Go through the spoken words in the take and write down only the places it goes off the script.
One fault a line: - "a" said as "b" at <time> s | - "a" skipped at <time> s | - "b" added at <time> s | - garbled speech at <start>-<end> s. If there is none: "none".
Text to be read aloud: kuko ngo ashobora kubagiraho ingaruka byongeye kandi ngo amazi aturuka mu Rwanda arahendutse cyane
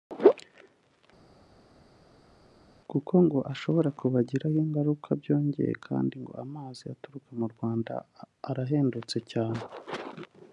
none